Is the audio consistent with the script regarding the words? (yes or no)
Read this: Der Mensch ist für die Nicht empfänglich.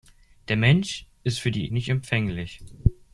yes